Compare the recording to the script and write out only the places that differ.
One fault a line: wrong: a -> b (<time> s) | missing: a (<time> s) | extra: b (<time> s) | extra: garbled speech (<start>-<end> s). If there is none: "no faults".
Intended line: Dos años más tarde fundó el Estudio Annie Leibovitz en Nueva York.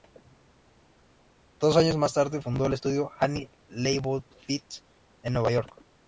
no faults